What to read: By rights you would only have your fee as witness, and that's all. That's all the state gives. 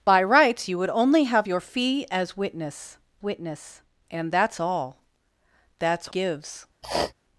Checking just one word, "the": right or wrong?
wrong